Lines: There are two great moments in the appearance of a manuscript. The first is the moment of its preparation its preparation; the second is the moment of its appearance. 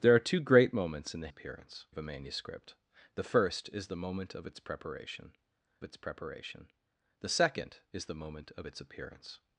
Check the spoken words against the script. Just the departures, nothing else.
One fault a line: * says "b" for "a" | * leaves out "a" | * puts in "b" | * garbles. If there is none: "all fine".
all fine